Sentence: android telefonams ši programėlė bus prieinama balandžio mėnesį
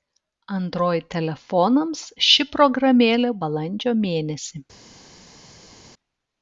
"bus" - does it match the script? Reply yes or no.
no